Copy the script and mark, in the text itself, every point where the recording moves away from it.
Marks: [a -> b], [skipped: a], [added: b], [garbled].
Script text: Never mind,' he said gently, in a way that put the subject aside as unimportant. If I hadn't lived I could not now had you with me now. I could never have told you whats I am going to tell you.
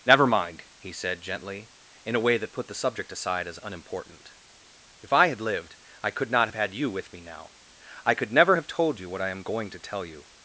Never mind,' he said gently, in a way that put the subject aside as unimportant. If I [hadn't -> had] lived I could not [now -> have] had you with me now. I could never have told you [whats -> what] I am going to tell you.